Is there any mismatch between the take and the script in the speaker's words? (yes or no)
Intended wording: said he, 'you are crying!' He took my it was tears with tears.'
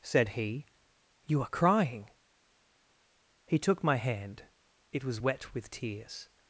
yes